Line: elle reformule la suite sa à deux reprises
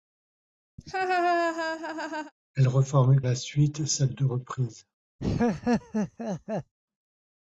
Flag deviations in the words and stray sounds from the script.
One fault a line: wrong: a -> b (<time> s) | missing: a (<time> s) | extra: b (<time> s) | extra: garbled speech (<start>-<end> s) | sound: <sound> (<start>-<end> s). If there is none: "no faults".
sound: laugh (0.8-2.3 s)
sound: laugh (5.2-6.7 s)